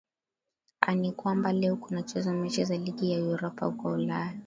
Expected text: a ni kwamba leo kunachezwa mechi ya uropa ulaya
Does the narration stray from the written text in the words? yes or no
yes